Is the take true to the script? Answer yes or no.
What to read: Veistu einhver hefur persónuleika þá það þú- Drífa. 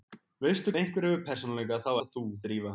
yes